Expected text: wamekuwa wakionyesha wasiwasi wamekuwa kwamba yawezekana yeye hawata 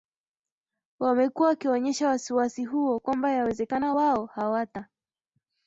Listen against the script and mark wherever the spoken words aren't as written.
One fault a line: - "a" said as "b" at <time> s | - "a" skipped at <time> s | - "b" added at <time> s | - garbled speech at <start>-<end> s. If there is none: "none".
- "wamekuwa" said as "huo" at 2.6 s
- "yeye" said as "wao" at 3.9 s